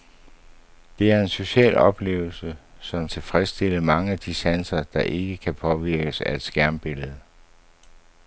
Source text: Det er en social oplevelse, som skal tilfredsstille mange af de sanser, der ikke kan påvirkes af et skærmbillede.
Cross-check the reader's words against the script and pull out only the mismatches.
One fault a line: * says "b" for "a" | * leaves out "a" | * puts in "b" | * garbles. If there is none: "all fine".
* leaves out "skal"